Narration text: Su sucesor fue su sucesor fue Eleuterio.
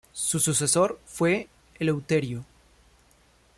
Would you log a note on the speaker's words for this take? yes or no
yes